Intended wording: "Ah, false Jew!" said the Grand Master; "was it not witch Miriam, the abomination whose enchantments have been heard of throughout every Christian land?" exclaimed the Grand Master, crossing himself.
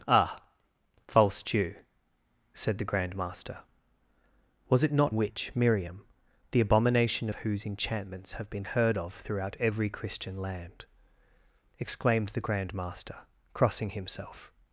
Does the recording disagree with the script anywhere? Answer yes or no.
no